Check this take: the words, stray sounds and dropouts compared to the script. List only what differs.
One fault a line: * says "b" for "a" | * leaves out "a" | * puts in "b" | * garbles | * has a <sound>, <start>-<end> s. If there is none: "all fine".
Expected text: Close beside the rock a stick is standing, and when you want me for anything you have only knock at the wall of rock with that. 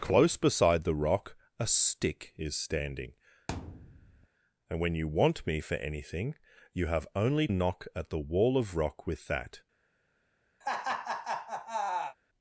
* has a thud, 3.5-4.3 s
* has a laugh, 10.6-12.2 s